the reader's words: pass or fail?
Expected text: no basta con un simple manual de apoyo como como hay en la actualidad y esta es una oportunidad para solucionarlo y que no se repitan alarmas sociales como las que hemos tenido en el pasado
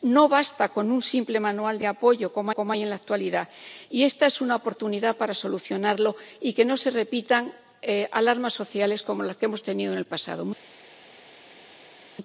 pass